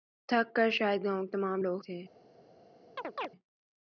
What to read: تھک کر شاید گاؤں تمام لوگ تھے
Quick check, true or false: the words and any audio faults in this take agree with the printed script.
false